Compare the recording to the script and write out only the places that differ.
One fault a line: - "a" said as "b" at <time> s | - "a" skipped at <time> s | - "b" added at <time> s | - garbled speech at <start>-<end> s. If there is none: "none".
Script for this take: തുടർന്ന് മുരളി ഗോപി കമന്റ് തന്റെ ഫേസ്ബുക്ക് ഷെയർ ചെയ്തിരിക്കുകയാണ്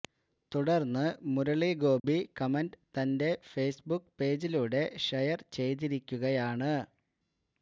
- "പേജിലൂടെ" added at 4.2 s